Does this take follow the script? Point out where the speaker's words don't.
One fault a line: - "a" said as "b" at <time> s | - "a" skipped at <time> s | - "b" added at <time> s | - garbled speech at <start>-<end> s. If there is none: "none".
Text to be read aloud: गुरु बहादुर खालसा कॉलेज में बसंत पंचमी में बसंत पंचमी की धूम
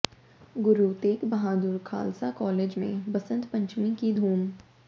- "तेग" added at 1.0 s
- "में बसंत पंचमी" skipped at 3.9 s